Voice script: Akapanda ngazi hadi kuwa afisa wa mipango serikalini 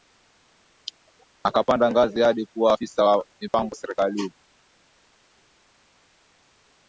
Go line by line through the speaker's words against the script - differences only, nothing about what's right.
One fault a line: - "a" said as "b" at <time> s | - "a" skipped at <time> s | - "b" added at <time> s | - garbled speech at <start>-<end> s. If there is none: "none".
none